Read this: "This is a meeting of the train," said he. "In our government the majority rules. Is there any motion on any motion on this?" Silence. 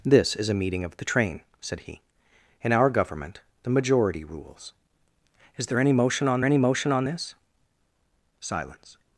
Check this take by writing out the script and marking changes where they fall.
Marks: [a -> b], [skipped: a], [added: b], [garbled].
"This is a meeting of the train," said he. "In our government the majority rules. Is there any motion on any motion on this?" Silence.